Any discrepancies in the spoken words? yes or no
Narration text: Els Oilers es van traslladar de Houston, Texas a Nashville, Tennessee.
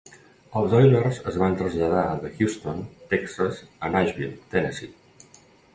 no